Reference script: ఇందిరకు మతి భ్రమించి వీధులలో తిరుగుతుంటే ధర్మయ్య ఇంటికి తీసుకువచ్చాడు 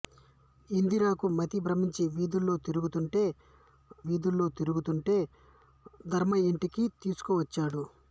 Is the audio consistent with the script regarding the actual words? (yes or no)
no